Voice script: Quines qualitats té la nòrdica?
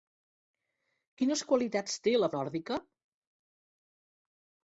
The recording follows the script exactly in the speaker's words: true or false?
true